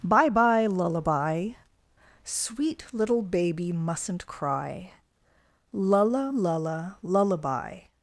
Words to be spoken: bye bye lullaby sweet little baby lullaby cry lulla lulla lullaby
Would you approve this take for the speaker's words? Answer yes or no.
no